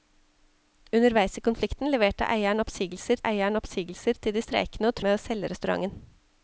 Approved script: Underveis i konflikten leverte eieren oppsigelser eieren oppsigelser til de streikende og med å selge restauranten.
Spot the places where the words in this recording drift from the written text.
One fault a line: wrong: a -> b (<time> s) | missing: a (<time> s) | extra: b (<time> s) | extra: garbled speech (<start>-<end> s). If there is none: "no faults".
no faults